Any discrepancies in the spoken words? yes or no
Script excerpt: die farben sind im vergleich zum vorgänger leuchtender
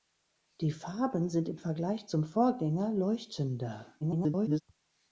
yes